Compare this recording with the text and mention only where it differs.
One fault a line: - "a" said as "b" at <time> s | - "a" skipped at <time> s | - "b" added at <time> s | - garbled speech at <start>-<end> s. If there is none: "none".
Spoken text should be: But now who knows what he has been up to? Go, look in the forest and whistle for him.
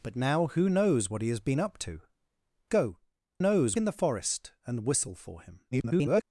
- "look" said as "knows" at 3.4 s
- garbled speech at 5.7-6.2 s